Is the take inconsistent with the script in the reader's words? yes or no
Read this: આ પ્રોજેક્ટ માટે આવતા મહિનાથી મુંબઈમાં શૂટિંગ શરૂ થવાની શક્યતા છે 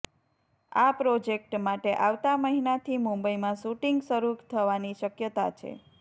no